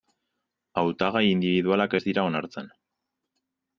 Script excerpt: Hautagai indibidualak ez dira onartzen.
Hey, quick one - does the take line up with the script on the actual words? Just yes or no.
yes